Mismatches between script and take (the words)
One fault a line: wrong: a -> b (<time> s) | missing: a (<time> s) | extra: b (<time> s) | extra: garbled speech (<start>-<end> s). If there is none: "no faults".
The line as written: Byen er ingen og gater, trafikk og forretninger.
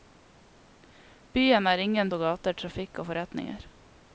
no faults